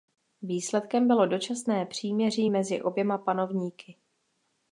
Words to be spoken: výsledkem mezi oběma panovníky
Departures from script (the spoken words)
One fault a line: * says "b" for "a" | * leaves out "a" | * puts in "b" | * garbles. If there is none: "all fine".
* puts in "bylo dočasné příměří"